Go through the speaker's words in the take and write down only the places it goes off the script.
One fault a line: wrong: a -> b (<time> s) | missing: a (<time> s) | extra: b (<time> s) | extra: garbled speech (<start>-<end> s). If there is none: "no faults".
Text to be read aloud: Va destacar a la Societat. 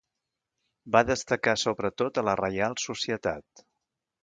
extra: sobretot (1.6 s)
extra: Reial (2.4 s)